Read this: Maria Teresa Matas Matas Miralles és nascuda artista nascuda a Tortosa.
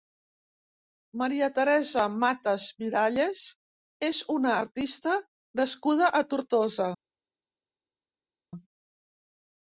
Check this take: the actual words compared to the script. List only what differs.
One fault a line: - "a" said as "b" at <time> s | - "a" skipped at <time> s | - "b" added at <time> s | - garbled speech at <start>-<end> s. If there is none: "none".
- "Matas" skipped at 2.6 s
- "nascuda" said as "una" at 4.4 s